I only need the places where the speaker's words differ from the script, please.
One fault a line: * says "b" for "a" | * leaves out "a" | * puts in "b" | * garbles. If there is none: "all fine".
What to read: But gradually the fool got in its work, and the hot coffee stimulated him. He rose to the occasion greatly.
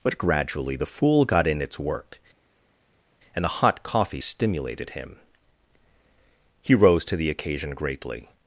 all fine